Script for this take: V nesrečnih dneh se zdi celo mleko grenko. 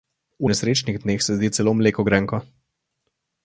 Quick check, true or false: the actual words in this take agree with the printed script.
true